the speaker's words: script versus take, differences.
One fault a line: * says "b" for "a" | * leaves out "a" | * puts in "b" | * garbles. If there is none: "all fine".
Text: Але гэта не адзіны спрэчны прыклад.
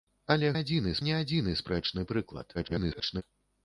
* says "адзіны" for "гэта"
* garbles